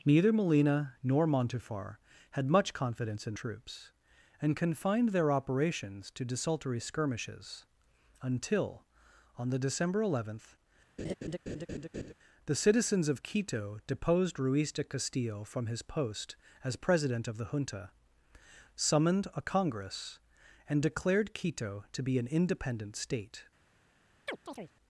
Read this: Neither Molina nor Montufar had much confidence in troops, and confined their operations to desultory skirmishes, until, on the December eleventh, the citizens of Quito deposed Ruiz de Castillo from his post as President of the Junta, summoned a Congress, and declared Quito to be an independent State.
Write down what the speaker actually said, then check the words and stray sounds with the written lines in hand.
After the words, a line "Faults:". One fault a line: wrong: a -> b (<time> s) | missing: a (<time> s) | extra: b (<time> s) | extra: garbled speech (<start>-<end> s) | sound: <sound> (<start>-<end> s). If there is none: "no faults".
Neither Molina nor Montufar had much confidence in troops, and confined their operations to desultory skirmishes, until, on the December eleventh, the citizens of Quito deposed Ruiz de Castillo from his post as President of the Junta, summoned a Congress, and declared Quito to be an independent State.
Faults:
sound: laugh (11.0-12.1 s)
sound: chirp (24.3-24.7 s)